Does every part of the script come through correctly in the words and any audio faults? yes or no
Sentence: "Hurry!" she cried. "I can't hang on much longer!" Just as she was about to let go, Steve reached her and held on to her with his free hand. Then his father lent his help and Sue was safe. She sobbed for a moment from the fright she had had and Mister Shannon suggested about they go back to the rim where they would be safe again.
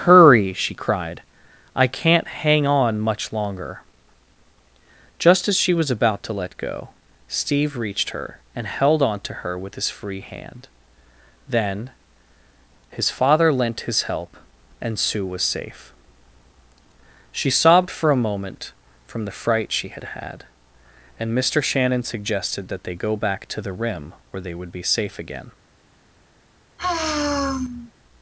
no